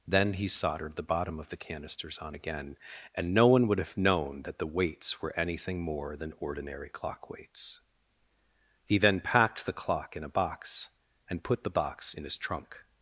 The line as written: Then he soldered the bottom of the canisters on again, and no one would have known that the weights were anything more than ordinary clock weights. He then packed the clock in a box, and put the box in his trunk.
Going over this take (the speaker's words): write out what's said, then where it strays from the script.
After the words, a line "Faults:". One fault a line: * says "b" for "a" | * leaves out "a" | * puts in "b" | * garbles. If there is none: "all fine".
Then he soldered the bottom of the canisters on again, and no one would have known that the weights were anything more than ordinary clock weights. He then packed the clock in a box, and put the box in his trunk.
Faults:
all fine